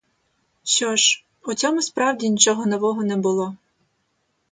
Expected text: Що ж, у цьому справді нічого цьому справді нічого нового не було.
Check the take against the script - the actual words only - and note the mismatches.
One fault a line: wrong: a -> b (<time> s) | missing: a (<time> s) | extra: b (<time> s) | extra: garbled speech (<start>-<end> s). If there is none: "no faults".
missing: цьому справді нічого (2.7 s)